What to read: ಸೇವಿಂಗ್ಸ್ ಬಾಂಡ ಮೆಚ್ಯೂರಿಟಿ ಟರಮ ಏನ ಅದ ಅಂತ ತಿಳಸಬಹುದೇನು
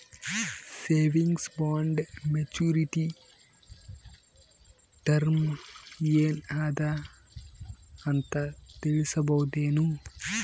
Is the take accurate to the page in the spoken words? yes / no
yes